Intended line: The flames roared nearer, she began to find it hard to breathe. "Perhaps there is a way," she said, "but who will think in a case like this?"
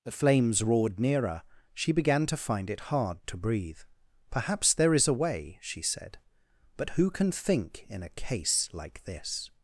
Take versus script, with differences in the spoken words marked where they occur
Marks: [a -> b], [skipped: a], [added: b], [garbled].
The flames roared nearer, she began to find it hard to breathe. "Perhaps there is a way," she said, "but who [will -> can] think in a case like this?"